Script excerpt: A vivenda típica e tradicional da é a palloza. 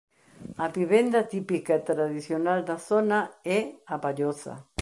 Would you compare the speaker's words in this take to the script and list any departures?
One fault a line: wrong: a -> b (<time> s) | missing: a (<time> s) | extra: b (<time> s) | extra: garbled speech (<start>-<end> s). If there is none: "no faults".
extra: zona (2.8 s)